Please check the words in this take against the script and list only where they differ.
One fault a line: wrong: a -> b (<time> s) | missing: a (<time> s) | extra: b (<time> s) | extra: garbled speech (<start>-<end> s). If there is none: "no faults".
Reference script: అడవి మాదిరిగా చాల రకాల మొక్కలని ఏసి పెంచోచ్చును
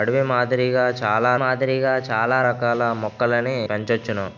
extra: మాదిరిగా చాల (1.4 s)
missing: ఏసి (3.6 s)